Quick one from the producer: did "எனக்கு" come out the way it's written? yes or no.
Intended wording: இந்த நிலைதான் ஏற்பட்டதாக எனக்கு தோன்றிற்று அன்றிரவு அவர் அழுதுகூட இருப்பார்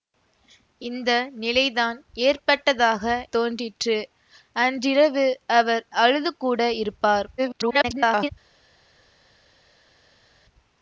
no